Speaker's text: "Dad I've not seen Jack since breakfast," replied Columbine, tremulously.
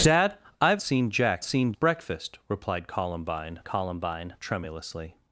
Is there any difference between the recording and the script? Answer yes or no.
yes